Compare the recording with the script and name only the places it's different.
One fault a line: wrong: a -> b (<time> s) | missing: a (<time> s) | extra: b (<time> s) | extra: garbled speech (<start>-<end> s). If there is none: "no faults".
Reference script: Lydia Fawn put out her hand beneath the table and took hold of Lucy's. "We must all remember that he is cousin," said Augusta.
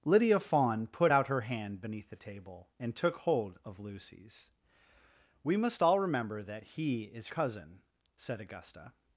no faults